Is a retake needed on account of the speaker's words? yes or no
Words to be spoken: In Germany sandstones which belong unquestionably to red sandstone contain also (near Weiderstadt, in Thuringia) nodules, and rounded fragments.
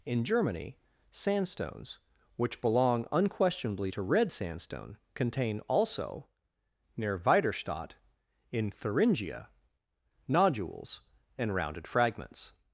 no